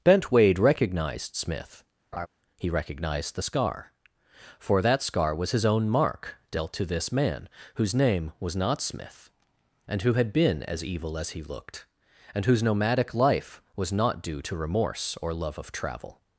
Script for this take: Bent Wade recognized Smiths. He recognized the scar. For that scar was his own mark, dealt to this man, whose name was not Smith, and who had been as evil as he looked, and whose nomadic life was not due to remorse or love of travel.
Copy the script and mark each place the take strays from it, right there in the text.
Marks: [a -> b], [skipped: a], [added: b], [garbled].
Bent Wade recognized [Smiths. -> Smith] He recognized the scar. For that scar was his own mark, dealt to this man, whose name was not Smith, and who had been as evil as he looked, and whose nomadic life was not due to remorse or love of travel.